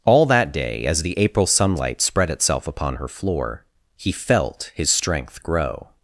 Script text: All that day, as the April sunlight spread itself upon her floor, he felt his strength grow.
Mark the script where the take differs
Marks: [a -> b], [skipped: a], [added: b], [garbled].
All that day, as the April sunlight spread itself upon her floor, he felt his strength grow.